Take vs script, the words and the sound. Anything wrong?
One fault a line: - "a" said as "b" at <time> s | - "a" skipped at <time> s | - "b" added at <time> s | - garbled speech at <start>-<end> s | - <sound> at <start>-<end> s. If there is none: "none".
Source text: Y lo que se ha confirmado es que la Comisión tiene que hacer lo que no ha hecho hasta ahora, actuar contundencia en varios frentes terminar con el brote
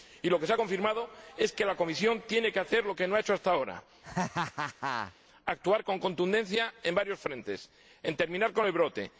- laugh at 4.0-5.1 s
- "con" added at 5.8 s